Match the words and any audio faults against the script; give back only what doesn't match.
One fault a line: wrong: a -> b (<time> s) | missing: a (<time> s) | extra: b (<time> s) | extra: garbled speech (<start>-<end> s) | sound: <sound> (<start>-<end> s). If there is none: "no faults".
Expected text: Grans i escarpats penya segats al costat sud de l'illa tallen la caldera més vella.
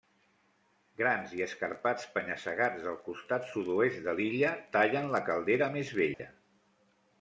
wrong: al -> del (2.9 s)
extra: oest (3.8 s)
sound: dropout (6.1-6.2 s)